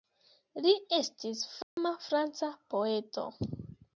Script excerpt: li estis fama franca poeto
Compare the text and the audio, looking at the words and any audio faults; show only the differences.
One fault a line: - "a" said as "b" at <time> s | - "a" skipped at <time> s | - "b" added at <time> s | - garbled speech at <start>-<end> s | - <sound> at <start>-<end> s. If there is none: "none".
- dropout at 1.6-1.8 s